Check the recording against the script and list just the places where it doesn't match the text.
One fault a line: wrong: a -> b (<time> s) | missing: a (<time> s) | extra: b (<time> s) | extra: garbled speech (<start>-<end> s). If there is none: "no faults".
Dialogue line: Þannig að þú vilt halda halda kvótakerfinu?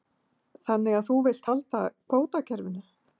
missing: halda (1.8 s)